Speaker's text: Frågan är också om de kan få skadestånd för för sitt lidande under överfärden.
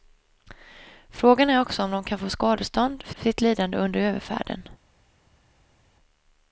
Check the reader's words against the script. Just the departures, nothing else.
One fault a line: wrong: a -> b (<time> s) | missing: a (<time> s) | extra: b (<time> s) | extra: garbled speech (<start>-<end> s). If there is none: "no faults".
no faults